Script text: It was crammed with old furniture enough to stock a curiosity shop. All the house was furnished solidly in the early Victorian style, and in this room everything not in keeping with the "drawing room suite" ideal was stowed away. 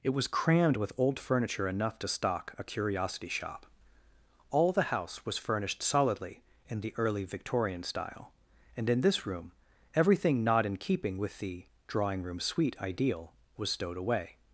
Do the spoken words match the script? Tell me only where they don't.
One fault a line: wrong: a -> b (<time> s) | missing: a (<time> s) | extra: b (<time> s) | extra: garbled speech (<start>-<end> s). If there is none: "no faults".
no faults